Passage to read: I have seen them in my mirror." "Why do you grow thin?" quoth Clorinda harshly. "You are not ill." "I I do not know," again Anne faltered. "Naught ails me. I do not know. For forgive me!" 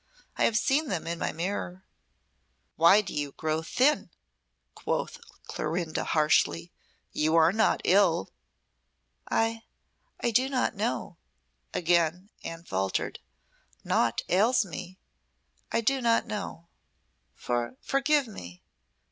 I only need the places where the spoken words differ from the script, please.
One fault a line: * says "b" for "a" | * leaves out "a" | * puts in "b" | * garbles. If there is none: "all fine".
all fine